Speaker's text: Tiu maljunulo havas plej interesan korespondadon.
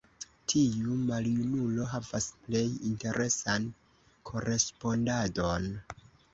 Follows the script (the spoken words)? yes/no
yes